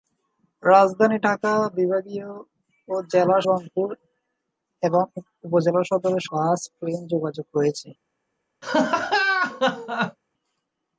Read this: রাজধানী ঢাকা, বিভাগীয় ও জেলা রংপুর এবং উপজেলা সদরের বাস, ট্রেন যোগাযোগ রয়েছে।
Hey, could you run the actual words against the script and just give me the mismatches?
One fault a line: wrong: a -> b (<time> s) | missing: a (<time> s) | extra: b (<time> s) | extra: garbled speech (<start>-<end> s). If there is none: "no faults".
no faults